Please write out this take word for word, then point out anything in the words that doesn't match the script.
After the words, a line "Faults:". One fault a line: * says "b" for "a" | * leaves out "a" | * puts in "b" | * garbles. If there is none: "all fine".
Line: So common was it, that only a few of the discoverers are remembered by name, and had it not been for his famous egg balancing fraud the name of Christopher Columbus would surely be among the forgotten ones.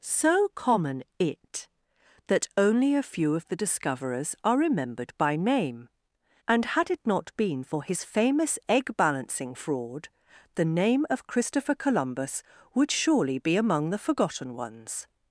So common it, that only a few of the discoverers are remembered by name, and had it not been for his famous egg balancing fraud the name of Christopher Columbus would surely be among the forgotten ones.
Faults:
* leaves out "was"